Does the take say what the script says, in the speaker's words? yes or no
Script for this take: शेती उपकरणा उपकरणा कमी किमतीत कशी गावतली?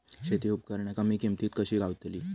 no